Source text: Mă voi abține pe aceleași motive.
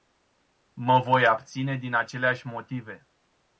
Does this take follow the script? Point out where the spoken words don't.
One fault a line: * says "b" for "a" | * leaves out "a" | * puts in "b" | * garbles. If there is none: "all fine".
* says "din" for "pe"